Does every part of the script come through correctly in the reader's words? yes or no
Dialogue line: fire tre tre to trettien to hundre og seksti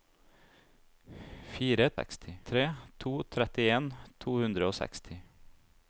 no